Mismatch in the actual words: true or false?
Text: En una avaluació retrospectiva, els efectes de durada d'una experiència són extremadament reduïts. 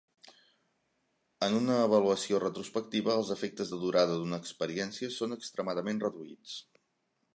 false